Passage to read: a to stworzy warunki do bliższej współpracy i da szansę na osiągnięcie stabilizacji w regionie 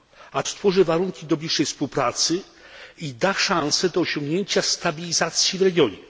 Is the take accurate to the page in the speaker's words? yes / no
no